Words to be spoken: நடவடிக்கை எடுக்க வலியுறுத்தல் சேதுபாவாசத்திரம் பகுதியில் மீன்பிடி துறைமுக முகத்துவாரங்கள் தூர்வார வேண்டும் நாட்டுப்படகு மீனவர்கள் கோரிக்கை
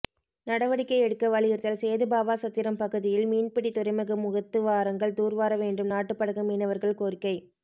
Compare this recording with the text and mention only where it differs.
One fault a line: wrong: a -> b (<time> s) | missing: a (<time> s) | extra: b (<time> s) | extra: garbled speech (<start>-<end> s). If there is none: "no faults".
no faults